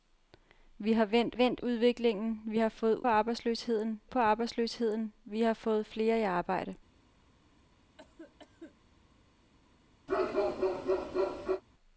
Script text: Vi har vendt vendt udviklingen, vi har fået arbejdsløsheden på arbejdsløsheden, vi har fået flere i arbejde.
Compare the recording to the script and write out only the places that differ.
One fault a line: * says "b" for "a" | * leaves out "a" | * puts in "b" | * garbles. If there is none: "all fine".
all fine